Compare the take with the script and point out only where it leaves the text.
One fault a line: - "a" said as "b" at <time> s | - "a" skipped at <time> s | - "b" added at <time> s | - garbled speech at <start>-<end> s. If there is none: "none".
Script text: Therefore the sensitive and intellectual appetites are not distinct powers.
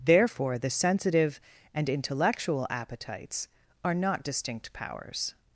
none